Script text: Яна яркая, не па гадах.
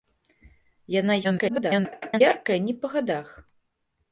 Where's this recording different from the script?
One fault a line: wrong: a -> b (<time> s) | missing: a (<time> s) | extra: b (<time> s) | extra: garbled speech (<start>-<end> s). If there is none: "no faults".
extra: garbled speech (1.2-2.2 s)